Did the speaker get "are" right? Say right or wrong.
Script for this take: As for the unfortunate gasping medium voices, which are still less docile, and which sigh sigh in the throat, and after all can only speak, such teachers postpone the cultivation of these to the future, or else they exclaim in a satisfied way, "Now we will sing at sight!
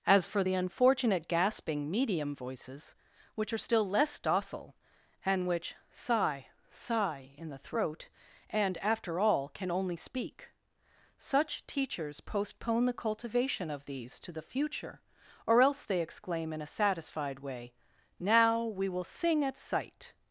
right